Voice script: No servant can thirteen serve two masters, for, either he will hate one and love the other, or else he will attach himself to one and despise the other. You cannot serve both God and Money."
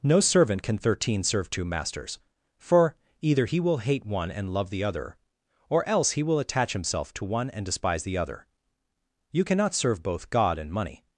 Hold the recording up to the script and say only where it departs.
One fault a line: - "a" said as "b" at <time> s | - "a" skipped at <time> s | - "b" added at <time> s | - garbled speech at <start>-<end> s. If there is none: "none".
none